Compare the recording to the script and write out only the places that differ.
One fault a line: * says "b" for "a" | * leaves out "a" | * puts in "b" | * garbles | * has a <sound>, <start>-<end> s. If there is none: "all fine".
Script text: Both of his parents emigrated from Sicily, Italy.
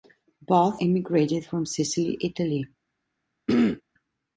* leaves out "of his parents"
* has a throat clearing, 3.5-3.8 s